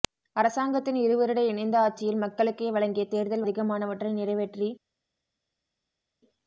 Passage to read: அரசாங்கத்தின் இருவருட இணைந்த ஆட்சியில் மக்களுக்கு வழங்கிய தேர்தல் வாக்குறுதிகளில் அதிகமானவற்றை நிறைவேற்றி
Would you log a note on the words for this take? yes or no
yes